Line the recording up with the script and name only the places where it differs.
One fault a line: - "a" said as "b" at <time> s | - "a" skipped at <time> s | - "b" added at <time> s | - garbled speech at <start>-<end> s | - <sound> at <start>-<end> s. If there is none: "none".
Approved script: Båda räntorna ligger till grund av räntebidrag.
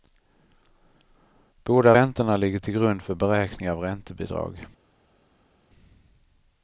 - "för beräkning" added at 3.0 s